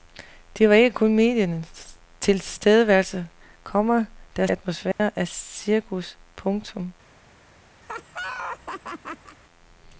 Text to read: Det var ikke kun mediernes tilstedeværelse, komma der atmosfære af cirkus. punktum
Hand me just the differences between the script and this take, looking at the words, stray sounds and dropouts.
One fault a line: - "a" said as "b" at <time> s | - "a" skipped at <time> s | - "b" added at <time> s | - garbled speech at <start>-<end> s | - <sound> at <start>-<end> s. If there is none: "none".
- dropout at 4.9-5.0 s
- laugh at 7.8-9.4 s